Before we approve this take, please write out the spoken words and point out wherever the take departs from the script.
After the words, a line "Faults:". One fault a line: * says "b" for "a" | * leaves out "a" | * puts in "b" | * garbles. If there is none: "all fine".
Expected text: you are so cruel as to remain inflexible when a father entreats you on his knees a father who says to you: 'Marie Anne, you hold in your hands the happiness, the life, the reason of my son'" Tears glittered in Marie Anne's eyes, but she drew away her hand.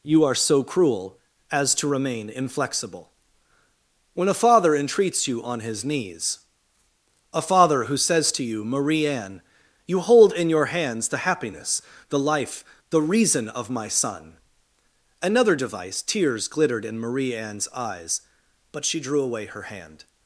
you are so cruel as to remain inflexible when a father entreats you on his knees a father who says to you: 'Marie Anne, you hold in your hands the happiness, the life, the reason of my son'" another device Tears glittered in Marie Anne's eyes, but she drew away her hand.
Faults:
* puts in "another device"